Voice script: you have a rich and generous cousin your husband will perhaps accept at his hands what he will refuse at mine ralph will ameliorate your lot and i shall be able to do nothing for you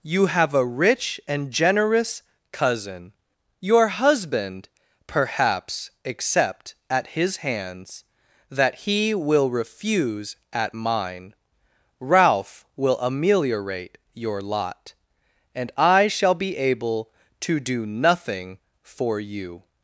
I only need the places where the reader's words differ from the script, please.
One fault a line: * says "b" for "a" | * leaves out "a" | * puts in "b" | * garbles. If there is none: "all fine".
* leaves out "will"
* says "that" for "what"